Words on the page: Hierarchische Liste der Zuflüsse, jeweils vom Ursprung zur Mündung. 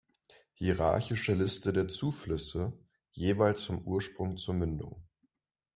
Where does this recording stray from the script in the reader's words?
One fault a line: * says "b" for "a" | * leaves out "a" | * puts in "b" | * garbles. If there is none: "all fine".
all fine